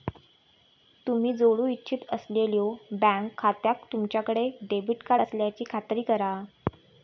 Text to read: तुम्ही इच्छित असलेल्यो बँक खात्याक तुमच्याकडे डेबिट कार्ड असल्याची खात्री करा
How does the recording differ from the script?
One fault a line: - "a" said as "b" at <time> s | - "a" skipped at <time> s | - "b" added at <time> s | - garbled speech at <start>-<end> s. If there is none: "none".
- "जोडू" added at 1.3 s